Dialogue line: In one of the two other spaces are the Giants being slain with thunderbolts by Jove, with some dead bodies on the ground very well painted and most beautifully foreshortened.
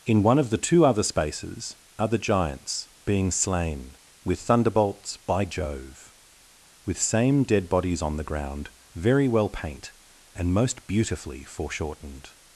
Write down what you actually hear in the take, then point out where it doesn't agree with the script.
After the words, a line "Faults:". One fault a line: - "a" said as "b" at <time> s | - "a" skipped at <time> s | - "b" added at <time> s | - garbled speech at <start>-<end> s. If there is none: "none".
In one of the two other spaces are the Giants being slain with thunderbolts by Jove, with same dead bodies on the ground very well paint and most beautifully foreshortened.
Faults:
- "some" said as "same" at 7.0 s
- "painted" said as "paint" at 9.5 s